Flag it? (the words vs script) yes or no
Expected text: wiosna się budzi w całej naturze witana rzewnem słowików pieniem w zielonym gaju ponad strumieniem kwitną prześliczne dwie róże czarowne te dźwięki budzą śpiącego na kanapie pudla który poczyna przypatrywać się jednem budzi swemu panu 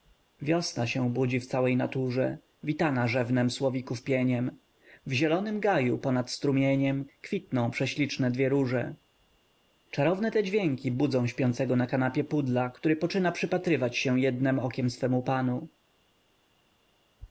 yes